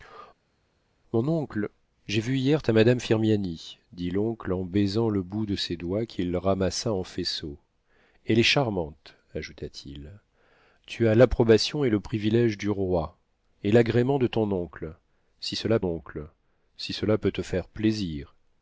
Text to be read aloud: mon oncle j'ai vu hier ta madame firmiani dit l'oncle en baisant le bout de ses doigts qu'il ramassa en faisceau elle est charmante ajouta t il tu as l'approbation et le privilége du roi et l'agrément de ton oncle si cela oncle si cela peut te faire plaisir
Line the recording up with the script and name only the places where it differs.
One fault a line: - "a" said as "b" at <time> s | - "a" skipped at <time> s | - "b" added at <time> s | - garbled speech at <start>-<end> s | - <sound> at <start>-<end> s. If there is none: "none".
none